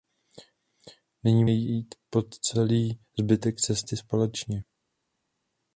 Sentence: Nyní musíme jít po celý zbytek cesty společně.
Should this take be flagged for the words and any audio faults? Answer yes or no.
yes